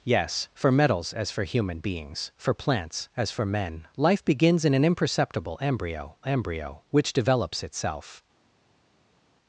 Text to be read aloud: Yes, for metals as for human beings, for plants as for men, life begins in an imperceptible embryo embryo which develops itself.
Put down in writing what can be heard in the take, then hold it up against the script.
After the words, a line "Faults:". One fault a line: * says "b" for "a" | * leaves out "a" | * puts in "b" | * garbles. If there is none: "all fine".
Yes, for metals as for human beings, for plants as for men, life begins in an imperceptible embryo embryo which develops itself.
Faults:
all fine